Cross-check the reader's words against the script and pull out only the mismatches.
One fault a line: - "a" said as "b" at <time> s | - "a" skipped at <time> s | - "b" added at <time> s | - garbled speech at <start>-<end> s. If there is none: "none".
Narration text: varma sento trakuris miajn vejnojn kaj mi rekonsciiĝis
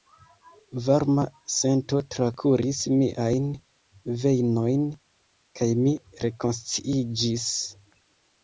none